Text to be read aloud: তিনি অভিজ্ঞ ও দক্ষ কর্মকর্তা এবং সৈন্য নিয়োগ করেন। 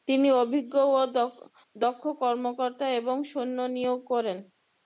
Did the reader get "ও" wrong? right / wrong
right